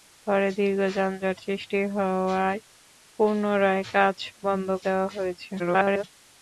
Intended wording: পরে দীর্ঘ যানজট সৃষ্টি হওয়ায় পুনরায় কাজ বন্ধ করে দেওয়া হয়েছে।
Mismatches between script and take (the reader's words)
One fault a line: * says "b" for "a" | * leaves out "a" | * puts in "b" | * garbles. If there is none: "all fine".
* leaves out "করে"
* garbles